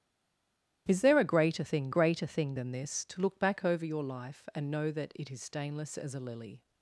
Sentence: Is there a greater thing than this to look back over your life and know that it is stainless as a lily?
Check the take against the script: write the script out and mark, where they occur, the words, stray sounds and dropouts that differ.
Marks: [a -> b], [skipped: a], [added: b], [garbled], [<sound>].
Is there a greater thing [added: greater thing] than this to look back over your life and know that it is stainless as a lily?